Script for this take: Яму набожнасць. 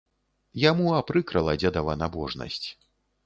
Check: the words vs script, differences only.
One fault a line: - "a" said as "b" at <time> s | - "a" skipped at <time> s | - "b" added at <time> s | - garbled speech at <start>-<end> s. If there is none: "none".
- "апрыкрала дзедава" added at 1.0 s